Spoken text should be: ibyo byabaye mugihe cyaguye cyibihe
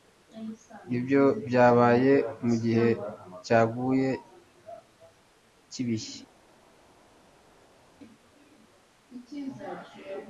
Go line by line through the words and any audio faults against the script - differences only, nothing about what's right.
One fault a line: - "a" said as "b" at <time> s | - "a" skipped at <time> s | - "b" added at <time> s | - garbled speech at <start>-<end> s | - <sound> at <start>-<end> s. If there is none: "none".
none